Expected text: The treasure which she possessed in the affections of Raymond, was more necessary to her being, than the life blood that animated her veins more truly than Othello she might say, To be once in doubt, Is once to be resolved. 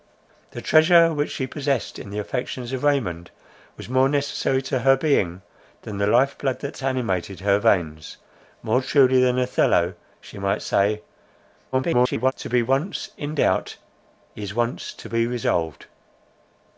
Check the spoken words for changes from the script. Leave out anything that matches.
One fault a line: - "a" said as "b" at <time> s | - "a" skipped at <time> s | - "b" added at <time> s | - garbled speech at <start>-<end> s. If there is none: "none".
- garbled speech at 11.7-12.3 s